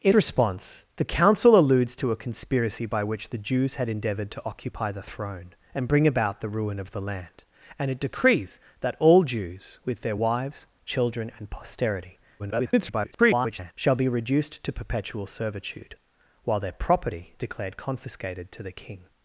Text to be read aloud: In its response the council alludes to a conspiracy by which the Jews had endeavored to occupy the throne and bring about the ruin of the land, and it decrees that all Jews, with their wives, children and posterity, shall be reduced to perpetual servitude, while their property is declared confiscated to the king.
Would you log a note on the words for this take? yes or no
yes